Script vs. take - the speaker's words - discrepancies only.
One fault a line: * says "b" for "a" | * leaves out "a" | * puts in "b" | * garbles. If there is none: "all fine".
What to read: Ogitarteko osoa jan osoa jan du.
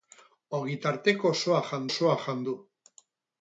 all fine